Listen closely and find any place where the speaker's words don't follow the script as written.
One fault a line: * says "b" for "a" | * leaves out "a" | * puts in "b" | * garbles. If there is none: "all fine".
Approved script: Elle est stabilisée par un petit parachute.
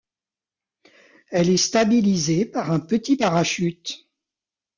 all fine